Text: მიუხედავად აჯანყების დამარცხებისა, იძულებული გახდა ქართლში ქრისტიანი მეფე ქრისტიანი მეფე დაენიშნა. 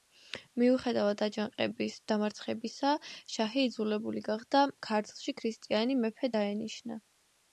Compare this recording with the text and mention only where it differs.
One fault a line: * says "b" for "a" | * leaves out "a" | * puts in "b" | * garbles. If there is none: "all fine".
* puts in "შაჰი"
* leaves out "ქრისტიანი მეფე"